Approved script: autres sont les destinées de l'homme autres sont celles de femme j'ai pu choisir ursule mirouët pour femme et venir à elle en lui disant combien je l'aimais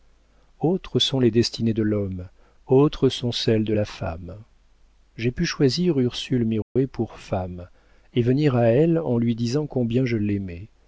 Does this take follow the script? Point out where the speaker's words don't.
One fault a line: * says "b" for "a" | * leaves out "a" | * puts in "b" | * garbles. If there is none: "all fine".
* puts in "la"